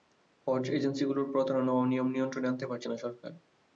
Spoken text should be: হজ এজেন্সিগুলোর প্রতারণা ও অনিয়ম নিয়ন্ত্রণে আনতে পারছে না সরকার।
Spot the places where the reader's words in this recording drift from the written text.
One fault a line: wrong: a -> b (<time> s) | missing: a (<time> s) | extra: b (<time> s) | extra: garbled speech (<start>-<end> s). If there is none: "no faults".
no faults